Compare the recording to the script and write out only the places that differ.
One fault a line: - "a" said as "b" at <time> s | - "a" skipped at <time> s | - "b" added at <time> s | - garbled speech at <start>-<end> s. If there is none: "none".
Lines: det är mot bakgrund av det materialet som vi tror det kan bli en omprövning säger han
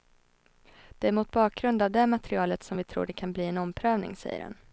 none